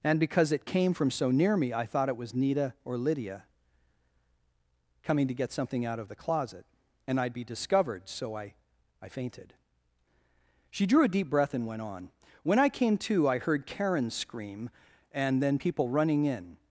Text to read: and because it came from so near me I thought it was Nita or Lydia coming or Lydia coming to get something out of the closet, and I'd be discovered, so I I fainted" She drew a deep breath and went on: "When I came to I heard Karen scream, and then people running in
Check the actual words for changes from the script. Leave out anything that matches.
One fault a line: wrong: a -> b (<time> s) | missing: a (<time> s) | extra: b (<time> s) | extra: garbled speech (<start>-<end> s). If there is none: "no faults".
missing: or Lydia coming (5.3 s)